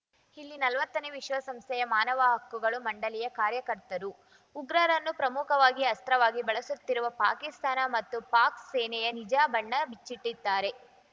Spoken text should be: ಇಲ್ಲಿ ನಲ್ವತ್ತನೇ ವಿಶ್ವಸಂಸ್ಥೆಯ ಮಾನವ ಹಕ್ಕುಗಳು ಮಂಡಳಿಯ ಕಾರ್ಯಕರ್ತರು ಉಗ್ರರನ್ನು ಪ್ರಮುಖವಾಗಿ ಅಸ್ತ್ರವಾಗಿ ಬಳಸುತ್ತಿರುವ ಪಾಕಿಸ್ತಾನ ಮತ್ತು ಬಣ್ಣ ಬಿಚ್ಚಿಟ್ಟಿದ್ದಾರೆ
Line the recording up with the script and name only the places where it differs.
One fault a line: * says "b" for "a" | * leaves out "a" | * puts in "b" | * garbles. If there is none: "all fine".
* puts in "ಪಾಕ್ ಸೇನೆಯ ನಿಜ"